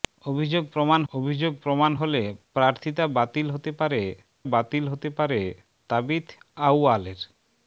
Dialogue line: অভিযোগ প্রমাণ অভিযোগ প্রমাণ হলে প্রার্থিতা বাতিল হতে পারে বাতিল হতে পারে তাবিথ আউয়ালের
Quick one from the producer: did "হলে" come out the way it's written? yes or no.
yes